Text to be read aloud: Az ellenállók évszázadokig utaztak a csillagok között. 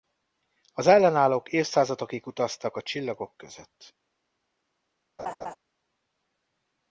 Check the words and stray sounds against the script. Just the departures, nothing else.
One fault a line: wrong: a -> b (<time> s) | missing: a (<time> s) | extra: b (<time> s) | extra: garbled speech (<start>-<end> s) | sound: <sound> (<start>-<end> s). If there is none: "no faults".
sound: laugh (5.2-5.6 s)